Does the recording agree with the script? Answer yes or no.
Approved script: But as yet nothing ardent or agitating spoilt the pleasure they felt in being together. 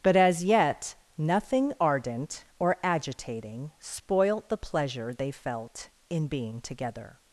yes